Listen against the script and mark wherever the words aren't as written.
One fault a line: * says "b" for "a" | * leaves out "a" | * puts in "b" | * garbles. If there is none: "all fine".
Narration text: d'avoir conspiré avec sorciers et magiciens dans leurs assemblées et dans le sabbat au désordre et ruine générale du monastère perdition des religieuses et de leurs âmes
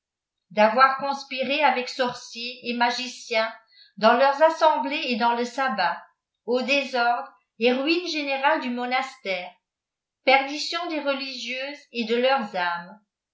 all fine